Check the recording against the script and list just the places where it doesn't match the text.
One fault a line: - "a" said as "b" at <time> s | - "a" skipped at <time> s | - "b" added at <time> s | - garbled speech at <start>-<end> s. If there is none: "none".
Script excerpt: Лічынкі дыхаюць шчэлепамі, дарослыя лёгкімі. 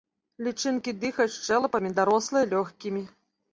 none